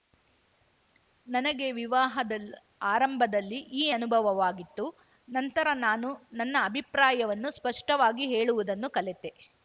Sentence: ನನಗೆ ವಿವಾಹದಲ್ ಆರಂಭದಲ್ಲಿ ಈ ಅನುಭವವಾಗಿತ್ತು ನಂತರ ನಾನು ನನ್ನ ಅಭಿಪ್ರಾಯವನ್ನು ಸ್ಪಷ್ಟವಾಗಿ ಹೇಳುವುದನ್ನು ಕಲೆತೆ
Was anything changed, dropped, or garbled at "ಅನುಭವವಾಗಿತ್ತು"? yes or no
no